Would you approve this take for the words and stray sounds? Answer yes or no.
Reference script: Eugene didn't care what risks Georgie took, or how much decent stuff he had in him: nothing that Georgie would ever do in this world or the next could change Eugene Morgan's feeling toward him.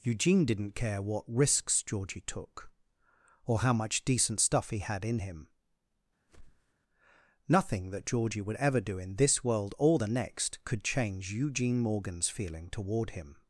no